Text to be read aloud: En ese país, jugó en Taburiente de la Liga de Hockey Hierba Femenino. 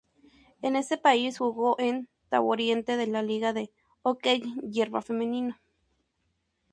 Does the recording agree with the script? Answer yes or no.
yes